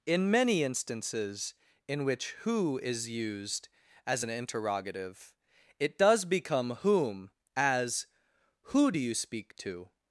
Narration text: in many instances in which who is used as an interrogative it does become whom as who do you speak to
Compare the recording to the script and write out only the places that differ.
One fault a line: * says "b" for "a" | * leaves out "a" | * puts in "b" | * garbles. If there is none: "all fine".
all fine